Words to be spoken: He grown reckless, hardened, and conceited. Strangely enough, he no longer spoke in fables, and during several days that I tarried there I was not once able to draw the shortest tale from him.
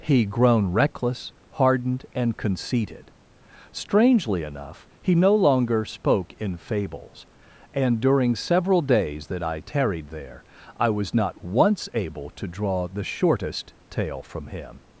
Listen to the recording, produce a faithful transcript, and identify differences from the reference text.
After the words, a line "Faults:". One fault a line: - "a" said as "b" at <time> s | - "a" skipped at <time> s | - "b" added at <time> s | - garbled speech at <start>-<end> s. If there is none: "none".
He grown reckless, hardened, and conceited. Strangely enough, he no longer spoke in fables, and during several days that I tarried there I was not once able to draw the shortest tale from him.
Faults:
none